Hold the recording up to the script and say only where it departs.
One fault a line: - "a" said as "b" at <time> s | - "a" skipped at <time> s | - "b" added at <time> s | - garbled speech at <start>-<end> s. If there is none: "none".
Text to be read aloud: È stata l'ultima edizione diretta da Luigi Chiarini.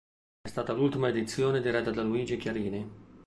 none